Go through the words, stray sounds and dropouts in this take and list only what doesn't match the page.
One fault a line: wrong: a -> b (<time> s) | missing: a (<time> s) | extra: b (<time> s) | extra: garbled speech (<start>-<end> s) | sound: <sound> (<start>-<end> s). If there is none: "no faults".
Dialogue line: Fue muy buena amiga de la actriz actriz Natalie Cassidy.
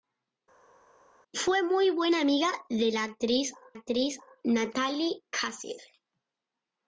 no faults